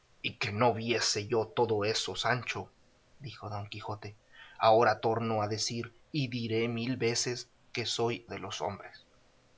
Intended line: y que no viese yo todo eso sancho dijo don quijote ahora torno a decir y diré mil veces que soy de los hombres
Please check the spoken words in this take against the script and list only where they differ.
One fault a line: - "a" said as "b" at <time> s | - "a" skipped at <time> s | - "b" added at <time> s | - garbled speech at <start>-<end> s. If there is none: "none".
none